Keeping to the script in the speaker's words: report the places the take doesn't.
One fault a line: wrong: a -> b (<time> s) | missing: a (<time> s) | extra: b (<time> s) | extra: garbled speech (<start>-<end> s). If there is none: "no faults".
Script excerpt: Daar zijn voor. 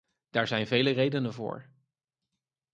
extra: vele redenen (0.7 s)